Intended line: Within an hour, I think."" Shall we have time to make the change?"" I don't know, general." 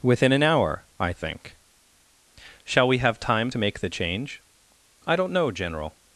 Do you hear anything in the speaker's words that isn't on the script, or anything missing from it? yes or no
no